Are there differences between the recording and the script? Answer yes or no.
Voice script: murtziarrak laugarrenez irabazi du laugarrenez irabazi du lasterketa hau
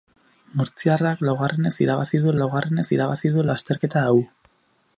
no